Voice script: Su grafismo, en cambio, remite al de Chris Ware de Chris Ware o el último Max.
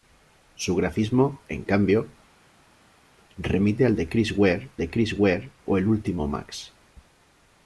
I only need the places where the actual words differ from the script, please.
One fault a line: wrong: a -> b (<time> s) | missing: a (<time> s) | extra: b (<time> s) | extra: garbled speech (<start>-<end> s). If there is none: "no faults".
no faults